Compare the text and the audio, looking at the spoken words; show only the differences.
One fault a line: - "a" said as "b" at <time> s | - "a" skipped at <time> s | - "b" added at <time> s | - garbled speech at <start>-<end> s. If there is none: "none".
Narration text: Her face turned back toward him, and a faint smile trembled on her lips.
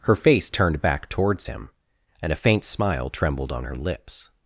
- "toward" said as "towards" at 1.1 s